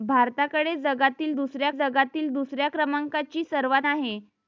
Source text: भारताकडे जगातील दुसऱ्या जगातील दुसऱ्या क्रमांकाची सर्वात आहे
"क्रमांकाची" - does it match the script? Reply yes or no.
yes